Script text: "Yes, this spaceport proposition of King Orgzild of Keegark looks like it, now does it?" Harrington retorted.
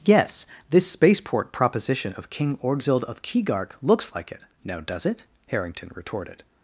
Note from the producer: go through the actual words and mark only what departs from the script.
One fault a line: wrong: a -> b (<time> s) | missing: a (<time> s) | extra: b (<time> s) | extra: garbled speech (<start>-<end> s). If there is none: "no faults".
no faults